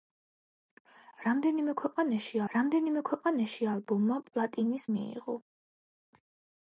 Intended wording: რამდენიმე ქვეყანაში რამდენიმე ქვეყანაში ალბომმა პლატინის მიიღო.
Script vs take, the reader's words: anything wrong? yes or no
no